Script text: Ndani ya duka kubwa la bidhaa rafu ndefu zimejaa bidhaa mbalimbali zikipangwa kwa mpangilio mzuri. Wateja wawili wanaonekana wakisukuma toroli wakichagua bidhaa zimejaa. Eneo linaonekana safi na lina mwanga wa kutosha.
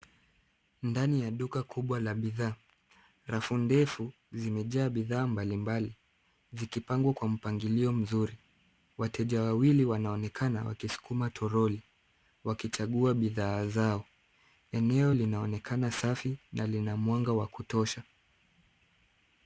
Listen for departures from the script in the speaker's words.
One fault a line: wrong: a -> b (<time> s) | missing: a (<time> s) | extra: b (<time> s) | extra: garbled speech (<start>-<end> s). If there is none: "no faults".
wrong: zimejaa -> zao (13.7 s)